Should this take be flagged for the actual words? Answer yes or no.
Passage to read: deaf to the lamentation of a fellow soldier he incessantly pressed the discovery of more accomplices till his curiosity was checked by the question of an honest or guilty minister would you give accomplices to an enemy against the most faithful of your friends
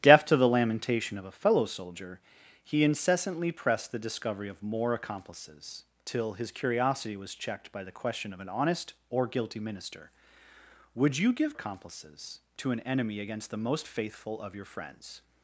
no